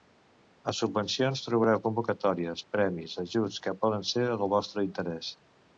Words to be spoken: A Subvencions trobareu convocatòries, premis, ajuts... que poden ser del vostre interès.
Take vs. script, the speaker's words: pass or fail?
pass